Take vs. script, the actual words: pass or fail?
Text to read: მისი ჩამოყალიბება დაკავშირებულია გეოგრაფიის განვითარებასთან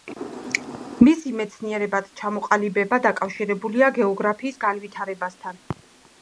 fail